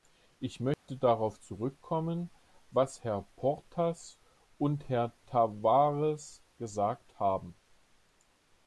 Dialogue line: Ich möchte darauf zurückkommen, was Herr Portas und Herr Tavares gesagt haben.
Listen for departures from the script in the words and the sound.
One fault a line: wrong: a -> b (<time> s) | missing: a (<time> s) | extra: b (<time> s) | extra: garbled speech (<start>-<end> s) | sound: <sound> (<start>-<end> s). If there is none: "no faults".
sound: dropout (0.7-0.9 s)